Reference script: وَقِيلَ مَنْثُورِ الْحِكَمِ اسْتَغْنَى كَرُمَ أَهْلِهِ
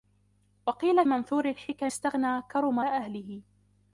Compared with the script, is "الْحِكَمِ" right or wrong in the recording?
right